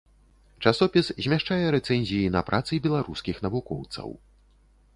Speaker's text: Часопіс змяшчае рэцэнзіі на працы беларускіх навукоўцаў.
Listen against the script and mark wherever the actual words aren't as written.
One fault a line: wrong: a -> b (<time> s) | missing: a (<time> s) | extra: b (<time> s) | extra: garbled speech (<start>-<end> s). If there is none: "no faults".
no faults